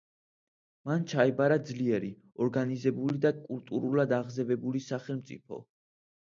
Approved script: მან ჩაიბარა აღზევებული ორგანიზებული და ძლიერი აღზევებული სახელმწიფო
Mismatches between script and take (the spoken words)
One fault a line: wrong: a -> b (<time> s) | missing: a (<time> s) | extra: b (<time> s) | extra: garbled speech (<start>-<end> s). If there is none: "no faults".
wrong: აღზევებული -> ძლიერი (1.7 s)
wrong: ძლიერი -> კულტურულად (3.4 s)